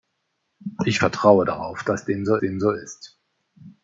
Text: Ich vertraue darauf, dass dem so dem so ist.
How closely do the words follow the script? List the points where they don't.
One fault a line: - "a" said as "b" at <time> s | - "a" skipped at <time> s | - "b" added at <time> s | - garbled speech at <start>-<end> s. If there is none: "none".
none